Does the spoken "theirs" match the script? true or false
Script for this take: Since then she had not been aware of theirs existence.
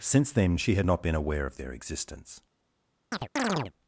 false